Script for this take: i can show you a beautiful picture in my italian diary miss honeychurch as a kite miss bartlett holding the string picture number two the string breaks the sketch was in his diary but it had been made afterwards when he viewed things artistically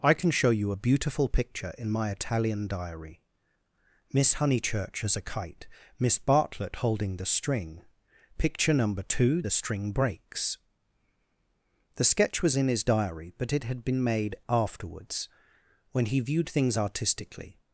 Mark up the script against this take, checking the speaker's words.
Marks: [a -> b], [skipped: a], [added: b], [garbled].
i can show you a beautiful picture in my italian diary miss honeychurch as a kite miss bartlett holding the string picture number two the string breaks the sketch was in his diary but it had been made afterwards when he viewed things artistically